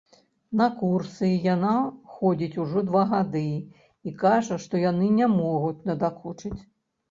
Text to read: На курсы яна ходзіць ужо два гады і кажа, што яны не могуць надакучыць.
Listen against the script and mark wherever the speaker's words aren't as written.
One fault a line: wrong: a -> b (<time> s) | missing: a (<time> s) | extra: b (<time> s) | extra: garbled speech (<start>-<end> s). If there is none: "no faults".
no faults